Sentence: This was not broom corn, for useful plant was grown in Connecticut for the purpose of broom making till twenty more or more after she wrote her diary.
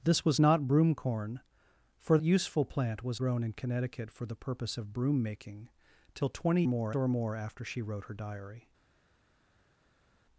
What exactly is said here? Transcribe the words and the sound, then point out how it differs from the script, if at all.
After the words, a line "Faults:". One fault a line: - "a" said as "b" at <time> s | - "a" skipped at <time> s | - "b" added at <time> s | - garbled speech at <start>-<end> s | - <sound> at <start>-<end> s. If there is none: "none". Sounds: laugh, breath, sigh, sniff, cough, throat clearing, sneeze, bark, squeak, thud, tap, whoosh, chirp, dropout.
This was not broom corn, for useful plant was grown in Connecticut for the purpose of broom making till twenty more or more after she wrote her diary.
Faults:
none